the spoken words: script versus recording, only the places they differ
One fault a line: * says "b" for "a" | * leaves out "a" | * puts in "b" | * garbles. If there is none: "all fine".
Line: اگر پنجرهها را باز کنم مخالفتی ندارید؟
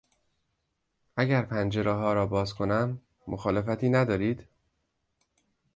all fine